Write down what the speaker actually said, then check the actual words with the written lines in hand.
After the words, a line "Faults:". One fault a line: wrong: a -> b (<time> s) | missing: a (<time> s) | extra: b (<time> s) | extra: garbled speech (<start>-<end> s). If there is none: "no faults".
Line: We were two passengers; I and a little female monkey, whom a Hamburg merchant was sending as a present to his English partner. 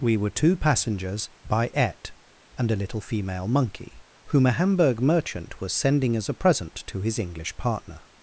We were two passengers; by et and a little female monkey, whom a Hamburg merchant was sending as a present to his English partner.
Faults:
wrong: I -> by et (1.4 s)